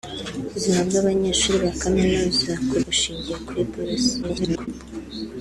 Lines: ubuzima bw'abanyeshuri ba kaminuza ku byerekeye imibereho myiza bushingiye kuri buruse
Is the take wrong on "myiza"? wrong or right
wrong